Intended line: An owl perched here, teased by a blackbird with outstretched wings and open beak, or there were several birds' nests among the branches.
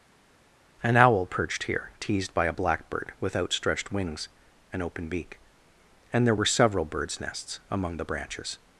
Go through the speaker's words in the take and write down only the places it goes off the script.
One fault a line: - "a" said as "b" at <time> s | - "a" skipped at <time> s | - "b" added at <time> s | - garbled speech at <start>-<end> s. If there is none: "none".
- "or" said as "and" at 6.1 s